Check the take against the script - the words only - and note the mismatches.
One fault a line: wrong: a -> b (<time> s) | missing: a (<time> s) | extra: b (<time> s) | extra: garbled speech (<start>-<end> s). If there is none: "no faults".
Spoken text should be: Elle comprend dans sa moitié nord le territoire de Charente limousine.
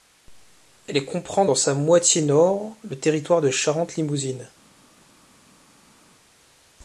no faults